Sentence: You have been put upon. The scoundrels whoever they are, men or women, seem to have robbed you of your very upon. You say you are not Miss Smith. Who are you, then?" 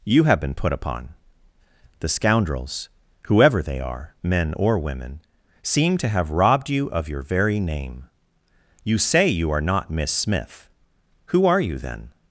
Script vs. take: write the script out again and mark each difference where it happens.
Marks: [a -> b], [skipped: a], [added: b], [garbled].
You have been put upon. The scoundrels whoever they are, men or women, seem to have robbed you of your very [upon. -> name] You say you are not Miss Smith. Who are you, then?"